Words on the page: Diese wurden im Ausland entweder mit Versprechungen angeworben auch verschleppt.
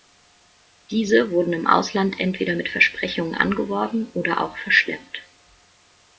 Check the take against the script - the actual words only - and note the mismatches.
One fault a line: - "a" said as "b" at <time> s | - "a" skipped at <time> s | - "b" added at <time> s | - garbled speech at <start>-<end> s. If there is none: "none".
- "oder" added at 4.2 s